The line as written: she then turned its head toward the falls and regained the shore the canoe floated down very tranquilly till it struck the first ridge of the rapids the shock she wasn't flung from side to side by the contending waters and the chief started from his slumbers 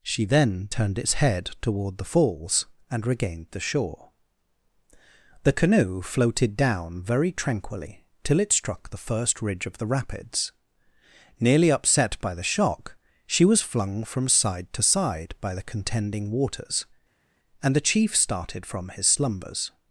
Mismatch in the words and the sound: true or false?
true